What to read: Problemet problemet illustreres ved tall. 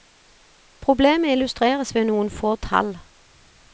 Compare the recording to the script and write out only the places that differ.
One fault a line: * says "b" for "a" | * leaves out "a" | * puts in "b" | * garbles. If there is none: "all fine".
* leaves out "problemet"
* puts in "noen få"